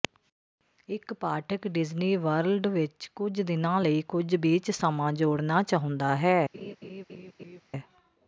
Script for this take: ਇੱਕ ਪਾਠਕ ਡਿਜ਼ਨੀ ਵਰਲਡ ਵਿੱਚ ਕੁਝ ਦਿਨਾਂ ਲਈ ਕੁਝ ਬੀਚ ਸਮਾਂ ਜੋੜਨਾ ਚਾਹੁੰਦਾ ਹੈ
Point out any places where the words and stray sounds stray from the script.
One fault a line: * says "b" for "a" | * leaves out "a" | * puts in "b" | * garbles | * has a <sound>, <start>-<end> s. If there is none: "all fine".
* has a laugh, 6.5-7.6 s